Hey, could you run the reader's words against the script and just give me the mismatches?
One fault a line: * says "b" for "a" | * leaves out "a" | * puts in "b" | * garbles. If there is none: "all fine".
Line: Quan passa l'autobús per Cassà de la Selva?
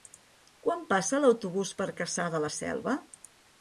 all fine